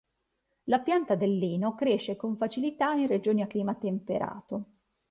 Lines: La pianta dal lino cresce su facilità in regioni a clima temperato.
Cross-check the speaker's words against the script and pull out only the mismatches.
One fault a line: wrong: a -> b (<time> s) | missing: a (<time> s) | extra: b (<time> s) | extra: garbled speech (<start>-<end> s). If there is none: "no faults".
wrong: dal -> del (1.1 s)
wrong: su -> con (2.1 s)